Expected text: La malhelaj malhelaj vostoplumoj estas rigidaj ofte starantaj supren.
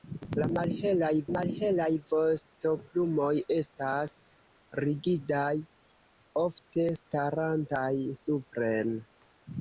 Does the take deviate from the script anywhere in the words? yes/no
no